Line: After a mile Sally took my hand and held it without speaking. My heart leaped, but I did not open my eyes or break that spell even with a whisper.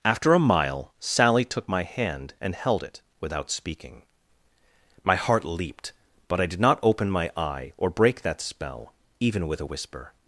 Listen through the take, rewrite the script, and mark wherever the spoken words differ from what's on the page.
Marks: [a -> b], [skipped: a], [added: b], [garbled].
After a mile Sally took my hand and held it without speaking. My heart leaped, but I did not open my [eyes -> eye] or break that spell even with a whisper.